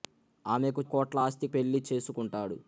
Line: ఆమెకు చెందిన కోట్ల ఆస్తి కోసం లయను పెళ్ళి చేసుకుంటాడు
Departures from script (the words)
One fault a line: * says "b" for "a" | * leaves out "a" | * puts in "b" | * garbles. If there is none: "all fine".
* leaves out "చెందిన"
* leaves out "కోసం లయను"